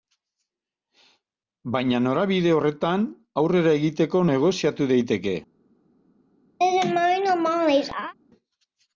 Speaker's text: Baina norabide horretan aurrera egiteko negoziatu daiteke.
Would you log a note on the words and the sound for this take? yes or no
yes